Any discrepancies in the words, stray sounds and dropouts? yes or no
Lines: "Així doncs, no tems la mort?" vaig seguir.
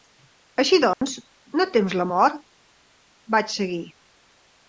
yes